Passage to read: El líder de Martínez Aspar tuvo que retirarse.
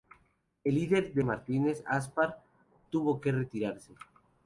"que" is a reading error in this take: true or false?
false